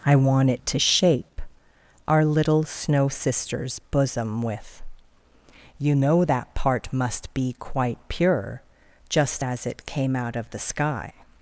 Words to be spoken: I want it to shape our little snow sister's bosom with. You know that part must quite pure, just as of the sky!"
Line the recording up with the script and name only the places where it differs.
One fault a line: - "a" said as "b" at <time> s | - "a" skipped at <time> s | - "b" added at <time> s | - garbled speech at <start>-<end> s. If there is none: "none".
- "be" added at 7.3 s
- "it came out" added at 9.7 s